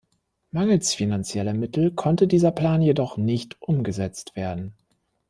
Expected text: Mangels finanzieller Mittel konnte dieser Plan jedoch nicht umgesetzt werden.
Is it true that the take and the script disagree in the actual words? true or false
false